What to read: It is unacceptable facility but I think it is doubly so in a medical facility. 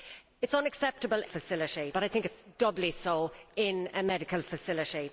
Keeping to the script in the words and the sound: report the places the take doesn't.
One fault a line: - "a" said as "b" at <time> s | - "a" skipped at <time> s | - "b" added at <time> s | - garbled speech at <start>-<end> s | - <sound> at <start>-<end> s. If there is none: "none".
none